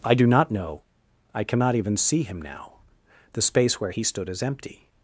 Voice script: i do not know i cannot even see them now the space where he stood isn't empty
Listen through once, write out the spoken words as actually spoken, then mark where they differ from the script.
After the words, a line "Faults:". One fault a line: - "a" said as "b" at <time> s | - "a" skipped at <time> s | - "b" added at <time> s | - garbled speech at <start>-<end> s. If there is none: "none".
i do not know i cannot even see him now the space where he stood is empty
Faults:
- "them" said as "him" at 2.2 s
- "isn't" said as "is" at 4.3 s